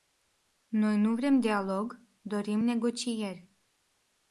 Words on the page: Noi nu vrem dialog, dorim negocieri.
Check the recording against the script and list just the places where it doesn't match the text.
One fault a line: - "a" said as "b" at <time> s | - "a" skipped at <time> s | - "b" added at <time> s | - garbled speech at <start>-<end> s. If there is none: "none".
none